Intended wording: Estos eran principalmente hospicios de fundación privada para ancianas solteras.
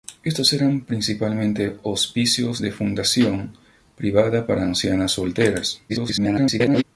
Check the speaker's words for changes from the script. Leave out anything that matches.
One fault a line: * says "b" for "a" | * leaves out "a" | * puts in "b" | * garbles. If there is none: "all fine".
* garbles